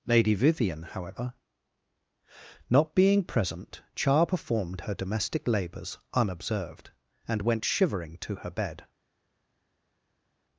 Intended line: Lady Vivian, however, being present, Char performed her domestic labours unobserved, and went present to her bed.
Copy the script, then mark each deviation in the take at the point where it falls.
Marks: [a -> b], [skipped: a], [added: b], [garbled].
Lady Vivian, however, [added: not] being present, Char performed her domestic labours unobserved, and went [present -> shivering] to her bed.